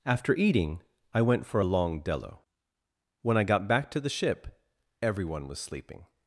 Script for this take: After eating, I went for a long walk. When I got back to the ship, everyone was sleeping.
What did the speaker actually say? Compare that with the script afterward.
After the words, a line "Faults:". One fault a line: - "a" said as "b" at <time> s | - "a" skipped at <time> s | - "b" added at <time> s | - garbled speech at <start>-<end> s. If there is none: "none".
After eating, I went for a long dello. When I got back to the ship, everyone was sleeping.
Faults:
- "walk" said as "dello" at 2.0 s